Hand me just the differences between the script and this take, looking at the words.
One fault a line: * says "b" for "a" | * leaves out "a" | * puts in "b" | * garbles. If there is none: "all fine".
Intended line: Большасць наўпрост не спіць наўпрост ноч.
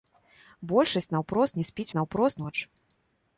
all fine